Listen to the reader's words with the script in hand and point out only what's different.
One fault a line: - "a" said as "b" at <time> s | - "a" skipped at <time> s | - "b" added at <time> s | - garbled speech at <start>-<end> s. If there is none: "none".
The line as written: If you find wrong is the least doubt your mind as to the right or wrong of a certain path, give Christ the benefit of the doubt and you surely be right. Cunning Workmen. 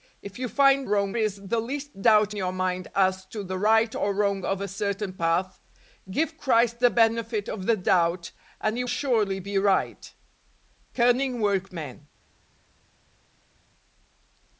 none